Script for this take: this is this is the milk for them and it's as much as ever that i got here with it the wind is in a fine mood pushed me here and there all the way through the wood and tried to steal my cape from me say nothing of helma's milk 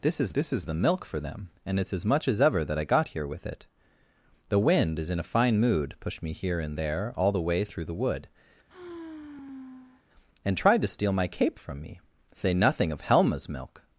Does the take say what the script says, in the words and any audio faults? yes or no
no